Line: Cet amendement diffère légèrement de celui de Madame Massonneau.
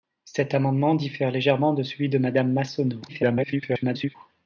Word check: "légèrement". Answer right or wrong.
right